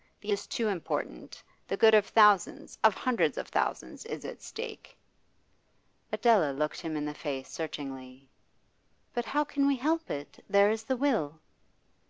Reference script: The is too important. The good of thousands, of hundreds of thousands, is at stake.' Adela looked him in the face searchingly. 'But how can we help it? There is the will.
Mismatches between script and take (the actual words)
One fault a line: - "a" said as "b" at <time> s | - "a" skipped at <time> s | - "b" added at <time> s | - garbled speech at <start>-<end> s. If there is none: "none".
none